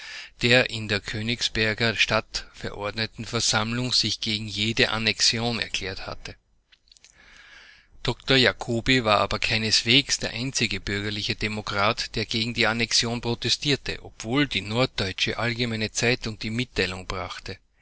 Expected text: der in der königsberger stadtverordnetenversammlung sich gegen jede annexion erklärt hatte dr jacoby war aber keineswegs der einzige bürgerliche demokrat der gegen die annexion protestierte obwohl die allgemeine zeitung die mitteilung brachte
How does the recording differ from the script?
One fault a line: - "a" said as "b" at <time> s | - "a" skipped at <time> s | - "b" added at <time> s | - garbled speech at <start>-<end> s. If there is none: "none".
- "norddeutsche" added at 14.6 s